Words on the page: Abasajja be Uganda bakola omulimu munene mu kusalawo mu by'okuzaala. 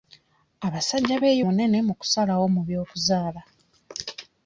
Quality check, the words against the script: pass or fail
fail